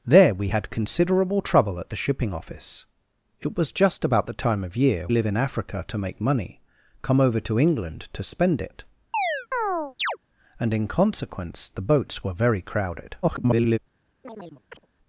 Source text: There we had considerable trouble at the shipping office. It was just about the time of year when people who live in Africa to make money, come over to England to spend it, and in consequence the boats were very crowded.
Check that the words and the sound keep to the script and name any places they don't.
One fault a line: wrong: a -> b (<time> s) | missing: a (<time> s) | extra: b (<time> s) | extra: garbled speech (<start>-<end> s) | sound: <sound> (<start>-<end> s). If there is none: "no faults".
missing: when people who (5.1 s)
sound: chirp (9.1-10.2 s)
extra: garbled speech (13.2-13.8 s)
sound: chirp (14.2-14.9 s)